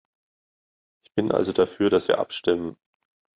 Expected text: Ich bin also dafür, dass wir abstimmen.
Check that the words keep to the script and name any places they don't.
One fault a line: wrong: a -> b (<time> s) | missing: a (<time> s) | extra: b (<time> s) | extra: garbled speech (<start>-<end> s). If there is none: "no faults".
no faults